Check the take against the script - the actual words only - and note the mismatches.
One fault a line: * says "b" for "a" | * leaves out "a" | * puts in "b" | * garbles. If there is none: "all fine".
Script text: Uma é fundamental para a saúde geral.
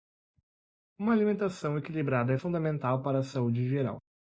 * puts in "alimentação equilibrada"